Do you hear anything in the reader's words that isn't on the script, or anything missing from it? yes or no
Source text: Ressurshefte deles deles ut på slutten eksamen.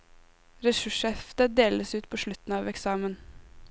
yes